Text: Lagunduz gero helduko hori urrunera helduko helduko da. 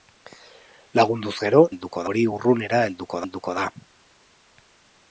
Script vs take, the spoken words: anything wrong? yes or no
no